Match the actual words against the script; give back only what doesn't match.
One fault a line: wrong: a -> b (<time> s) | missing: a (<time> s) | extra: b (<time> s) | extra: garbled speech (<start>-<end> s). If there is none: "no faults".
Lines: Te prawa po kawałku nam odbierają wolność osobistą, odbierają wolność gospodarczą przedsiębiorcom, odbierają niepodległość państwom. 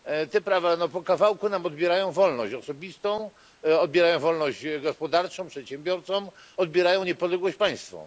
no faults